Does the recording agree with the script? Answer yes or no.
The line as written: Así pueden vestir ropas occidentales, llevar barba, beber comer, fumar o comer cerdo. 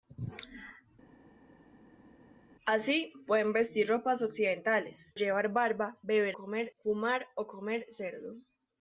yes